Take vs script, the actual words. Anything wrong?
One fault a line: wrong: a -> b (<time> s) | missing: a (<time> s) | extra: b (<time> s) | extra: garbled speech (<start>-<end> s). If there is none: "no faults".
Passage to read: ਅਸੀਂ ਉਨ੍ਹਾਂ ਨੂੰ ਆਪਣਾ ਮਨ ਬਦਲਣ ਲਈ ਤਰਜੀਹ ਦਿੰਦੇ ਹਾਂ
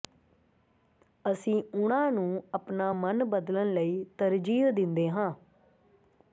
no faults